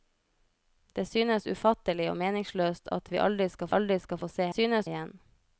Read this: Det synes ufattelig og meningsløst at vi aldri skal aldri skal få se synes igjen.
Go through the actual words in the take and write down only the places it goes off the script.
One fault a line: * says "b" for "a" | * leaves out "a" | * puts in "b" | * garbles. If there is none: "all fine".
all fine